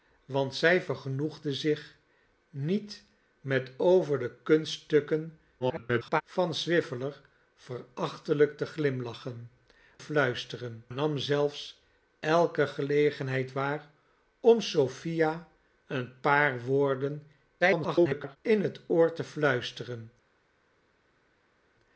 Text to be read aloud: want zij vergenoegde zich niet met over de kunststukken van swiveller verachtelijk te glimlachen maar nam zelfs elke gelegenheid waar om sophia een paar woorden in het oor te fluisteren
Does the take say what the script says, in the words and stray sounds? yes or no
no